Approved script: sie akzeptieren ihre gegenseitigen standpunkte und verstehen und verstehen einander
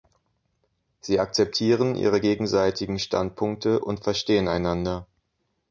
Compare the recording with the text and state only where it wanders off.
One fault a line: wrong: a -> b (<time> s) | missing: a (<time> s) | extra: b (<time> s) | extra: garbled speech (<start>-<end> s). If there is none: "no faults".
missing: und verstehen (4.5 s)